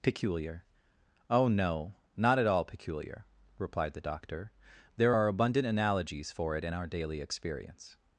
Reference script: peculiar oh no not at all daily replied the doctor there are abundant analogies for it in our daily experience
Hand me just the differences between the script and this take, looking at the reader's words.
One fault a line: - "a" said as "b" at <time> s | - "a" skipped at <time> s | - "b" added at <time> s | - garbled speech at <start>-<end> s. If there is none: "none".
- "daily" said as "peculiar" at 2.6 s